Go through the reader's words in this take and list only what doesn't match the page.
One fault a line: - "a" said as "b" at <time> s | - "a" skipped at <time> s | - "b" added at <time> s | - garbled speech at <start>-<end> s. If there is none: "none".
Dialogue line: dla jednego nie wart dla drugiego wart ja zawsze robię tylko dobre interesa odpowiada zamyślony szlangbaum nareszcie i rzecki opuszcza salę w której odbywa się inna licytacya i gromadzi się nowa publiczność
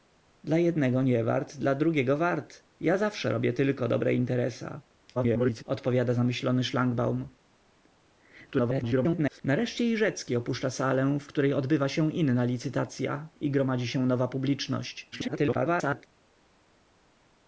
- garbled speech at 5.1-5.6 s
- garbled speech at 8.5-9.4 s
- garbled speech at 15.1-16.1 s